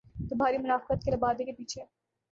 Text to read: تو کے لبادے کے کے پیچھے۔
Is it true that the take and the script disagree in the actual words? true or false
true